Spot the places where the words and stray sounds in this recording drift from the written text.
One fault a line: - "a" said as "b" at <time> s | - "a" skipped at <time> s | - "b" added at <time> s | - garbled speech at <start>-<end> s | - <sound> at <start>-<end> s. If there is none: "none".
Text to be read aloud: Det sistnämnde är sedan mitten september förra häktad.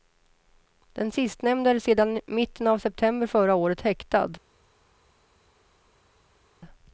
- "Det" said as "Den" at 0.9 s
- "av" added at 2.7 s
- "året" added at 3.5 s